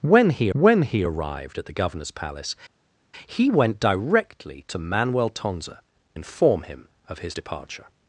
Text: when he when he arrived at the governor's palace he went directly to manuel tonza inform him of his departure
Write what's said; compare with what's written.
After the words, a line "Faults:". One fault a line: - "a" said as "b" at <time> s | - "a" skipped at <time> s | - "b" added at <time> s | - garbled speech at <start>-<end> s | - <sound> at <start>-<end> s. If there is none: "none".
when he when he arrived at the governor's palace he went directly to manuel tonza inform him of his departure
Faults:
none